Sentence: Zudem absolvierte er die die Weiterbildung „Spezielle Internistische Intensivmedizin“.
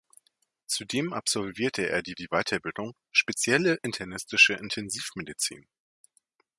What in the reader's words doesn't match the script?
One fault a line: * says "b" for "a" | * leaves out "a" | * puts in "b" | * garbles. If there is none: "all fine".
all fine